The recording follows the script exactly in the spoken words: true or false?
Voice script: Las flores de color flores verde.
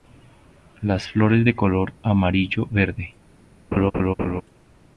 false